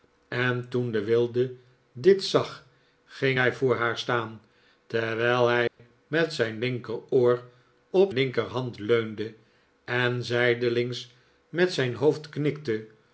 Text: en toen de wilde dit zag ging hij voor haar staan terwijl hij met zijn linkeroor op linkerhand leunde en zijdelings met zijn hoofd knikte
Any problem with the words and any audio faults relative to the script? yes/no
yes